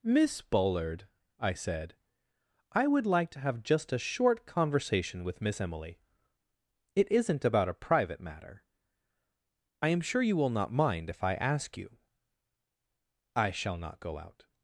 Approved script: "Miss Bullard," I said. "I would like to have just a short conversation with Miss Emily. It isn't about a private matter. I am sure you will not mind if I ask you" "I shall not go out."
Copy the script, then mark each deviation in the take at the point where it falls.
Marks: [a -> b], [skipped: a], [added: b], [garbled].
"Miss Bullard," I said. "I would like to have just a short conversation with Miss Emily. It isn't about a private matter. I am sure you will not mind if I ask you" "I shall not go out."